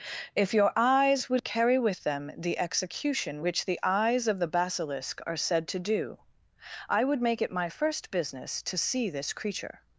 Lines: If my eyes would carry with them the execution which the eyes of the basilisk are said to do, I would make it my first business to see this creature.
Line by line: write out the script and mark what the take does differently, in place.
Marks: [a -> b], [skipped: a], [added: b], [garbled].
If [my -> your] eyes would carry with them the execution which the eyes of the basilisk are said to do, I would make it my first business to see this creature.